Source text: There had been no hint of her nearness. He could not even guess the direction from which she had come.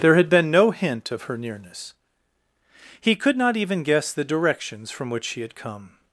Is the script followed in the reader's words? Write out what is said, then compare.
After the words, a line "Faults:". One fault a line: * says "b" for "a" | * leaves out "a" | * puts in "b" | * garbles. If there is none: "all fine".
There had been no hint of her nearness. He could not even guess the directions from which she had come.
Faults:
* says "directions" for "direction"